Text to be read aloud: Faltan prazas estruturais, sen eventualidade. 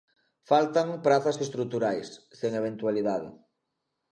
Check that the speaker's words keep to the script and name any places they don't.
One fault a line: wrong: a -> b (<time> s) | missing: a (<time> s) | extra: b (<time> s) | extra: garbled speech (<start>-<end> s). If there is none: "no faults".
no faults